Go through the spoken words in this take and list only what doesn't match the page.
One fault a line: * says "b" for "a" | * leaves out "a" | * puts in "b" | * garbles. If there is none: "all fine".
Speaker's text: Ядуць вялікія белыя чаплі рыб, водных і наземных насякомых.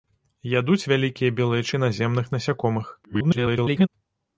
* leaves out "чаплі рыб водных"
* garbles